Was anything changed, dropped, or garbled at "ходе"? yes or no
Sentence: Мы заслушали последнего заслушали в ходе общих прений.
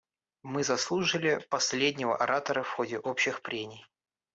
no